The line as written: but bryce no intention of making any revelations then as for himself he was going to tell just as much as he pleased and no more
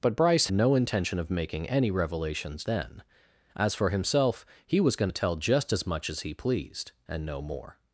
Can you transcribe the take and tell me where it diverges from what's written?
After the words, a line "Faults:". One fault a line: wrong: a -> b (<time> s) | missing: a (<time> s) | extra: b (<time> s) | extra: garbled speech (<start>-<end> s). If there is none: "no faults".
but bryce no intention of making any revelations then as for himself he was going to tell just as much as he pleased and no more
Faults:
no faults